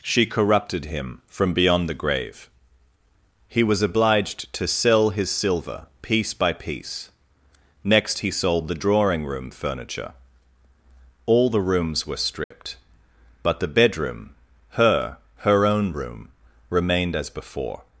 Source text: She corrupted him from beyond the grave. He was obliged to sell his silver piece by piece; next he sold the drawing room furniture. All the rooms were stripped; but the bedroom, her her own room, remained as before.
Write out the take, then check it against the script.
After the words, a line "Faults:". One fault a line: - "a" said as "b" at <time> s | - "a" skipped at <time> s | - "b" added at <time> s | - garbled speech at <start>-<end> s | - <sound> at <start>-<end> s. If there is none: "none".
She corrupted him from beyond the grave. He was obliged to sell his silver piece by piece; next he sold the drawing room furniture. All the rooms were stripped; but the bedroom, her her own room, remained as before.
Faults:
- dropout at 12.4-12.5 s